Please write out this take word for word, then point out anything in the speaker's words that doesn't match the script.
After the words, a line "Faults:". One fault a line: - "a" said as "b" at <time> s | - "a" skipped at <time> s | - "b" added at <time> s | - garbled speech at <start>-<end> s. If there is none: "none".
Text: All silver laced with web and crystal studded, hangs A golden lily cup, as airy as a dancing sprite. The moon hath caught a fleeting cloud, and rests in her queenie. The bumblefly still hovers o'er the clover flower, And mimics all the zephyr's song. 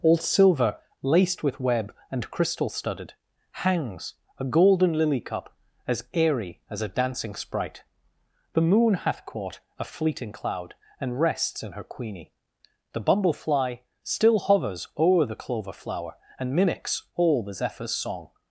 All silver laced with web and crystal studded, hangs A golden lily cup, as airy as a dancing sprite. The moon hath caught a fleeting cloud, and rests in her queenie. The bumblefly still hovers o'er the clover flower, And mimics all the zephyr's song.
Faults:
none